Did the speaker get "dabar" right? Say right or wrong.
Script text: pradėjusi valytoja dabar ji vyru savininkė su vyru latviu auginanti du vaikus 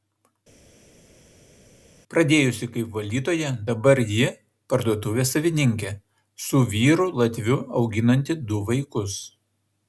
right